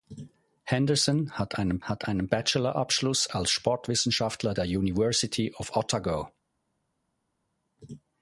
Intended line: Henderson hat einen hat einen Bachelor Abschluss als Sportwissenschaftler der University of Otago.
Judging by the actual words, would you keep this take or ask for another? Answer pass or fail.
pass